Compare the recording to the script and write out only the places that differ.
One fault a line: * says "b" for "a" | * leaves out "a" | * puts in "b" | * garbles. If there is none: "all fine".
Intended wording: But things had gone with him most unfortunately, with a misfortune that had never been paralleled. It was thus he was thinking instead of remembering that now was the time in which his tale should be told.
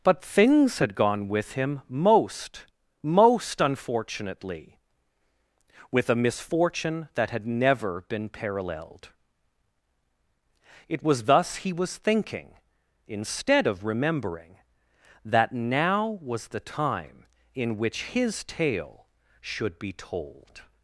* puts in "most"